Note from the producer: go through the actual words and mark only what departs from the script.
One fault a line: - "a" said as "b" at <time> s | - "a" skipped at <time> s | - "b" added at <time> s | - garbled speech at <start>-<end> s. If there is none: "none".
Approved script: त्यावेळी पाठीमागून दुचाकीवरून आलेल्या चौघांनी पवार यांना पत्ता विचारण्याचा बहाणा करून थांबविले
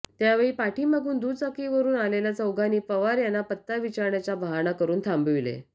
none